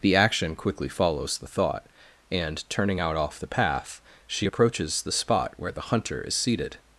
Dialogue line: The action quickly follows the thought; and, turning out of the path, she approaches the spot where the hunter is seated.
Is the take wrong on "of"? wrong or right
wrong